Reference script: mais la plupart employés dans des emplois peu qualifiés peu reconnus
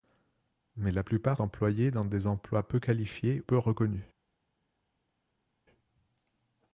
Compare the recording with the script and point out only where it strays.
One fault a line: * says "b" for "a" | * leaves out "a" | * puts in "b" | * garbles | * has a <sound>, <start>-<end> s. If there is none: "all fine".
all fine